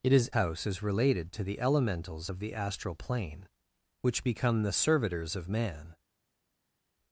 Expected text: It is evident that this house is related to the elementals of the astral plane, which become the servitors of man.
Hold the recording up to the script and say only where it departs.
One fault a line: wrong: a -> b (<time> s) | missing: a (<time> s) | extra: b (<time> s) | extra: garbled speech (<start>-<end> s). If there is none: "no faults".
missing: evident that this (0.3 s)